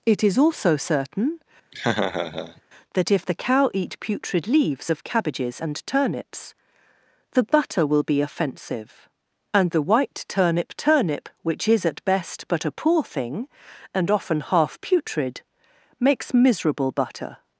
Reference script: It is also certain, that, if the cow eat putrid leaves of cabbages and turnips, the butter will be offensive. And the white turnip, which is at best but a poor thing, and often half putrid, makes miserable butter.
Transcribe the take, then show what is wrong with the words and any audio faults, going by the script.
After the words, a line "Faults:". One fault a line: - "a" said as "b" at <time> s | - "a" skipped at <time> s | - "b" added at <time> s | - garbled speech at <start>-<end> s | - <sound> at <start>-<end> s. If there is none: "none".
It is also certain, that, if the cow eat putrid leaves of cabbages and turnips, the butter will be offensive. And the white turnip turnip, which is at best but a poor thing, and often half putrid, makes miserable butter.
Faults:
- laugh at 1.7-2.6 s
- "turnip" added at 10.8 s